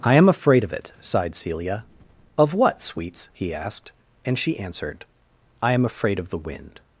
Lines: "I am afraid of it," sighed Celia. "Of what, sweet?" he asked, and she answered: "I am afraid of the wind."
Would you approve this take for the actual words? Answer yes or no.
no